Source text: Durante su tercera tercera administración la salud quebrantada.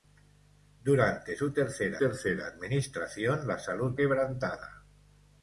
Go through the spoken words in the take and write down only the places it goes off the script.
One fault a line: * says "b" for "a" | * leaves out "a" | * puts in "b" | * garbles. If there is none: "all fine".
all fine